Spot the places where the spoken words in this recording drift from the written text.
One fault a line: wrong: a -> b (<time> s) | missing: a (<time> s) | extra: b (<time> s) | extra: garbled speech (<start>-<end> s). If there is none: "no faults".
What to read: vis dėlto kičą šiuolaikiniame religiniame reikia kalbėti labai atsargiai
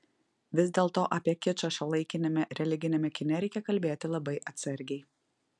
extra: apie (1.2 s)
extra: kine (3.2 s)